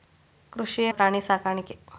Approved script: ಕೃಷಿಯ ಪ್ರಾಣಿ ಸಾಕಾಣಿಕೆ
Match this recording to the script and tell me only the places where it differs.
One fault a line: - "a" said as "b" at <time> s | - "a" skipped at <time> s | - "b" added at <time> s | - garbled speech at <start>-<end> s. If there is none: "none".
none